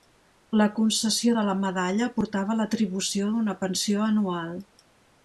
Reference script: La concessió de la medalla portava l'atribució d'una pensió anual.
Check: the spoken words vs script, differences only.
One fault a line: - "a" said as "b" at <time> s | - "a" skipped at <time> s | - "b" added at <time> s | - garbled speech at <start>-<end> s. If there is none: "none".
none